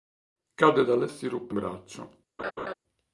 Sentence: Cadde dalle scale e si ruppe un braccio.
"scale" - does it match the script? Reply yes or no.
no